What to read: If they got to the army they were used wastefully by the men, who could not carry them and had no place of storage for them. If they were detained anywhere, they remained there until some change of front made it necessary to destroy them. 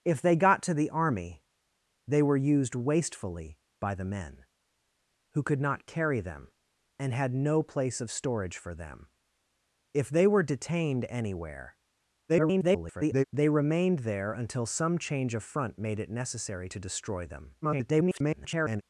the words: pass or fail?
fail